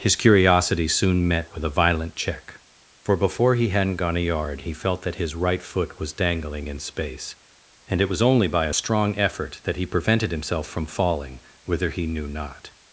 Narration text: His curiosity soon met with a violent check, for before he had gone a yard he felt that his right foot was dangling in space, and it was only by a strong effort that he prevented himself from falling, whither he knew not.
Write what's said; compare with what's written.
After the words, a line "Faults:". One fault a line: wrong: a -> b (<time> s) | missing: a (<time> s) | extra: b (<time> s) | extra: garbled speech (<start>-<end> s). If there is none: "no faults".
His curiosity soon met with a violent check, for before he hadn't gone a yard he felt that his right foot was dangling in space, and it was only by a strong effort that he prevented himself from falling, whither he knew not.
Faults:
wrong: had -> hadn't (3.7 s)